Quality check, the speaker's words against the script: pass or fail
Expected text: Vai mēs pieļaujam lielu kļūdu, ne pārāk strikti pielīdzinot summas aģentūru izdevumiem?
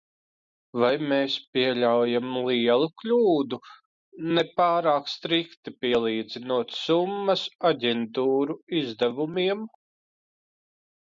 pass